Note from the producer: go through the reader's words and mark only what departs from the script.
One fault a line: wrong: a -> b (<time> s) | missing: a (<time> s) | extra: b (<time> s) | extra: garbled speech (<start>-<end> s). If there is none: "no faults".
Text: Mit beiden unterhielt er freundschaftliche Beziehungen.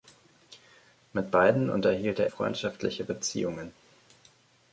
no faults